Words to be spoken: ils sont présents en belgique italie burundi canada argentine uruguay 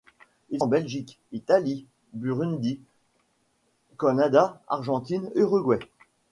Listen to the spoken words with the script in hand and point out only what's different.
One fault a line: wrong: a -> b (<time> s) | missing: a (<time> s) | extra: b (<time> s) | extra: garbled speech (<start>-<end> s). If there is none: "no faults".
missing: sont présents (0.6 s)